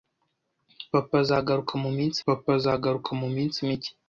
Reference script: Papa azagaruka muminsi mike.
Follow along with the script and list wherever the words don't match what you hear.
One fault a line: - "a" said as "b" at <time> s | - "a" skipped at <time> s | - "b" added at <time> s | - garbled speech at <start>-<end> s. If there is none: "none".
- "papa azagaruka muminsi" added at 2.2 s